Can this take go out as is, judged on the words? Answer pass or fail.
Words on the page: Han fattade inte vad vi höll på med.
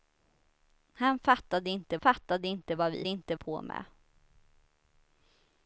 fail